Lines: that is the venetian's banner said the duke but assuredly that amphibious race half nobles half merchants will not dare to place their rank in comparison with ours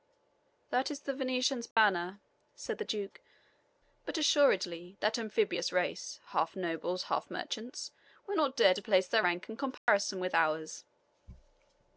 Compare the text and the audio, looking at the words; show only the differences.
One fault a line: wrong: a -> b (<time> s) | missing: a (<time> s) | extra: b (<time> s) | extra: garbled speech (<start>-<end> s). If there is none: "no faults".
no faults